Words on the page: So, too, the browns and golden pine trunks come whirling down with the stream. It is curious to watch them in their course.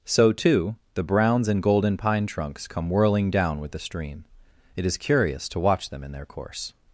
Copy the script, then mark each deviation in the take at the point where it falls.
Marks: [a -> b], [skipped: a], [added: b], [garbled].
So, too, the browns and golden pine trunks come whirling down with the stream. It is curious to watch them in their course.